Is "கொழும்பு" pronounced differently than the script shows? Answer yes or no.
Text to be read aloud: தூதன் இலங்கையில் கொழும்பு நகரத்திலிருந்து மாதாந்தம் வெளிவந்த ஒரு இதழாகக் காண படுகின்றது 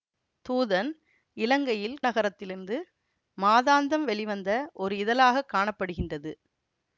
yes